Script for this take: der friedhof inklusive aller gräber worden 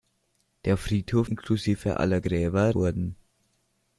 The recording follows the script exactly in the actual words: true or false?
true